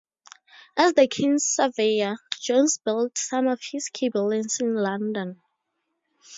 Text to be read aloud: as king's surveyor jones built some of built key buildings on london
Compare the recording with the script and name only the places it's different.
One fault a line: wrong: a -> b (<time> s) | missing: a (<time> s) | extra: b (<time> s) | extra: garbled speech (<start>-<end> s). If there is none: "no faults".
extra: the (0.9 s)
wrong: built -> his (3.6 s)
wrong: on -> in (4.6 s)